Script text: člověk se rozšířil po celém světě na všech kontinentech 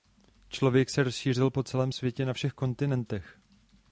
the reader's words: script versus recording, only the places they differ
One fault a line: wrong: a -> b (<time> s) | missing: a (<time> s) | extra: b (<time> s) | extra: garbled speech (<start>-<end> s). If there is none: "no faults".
no faults